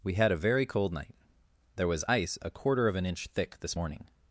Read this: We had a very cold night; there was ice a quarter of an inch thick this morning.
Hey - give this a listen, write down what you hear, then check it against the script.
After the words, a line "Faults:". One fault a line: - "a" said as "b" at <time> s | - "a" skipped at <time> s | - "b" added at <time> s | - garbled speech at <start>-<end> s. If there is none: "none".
We had a very cold night; there was ice a quarter of an inch thick this morning.
Faults:
none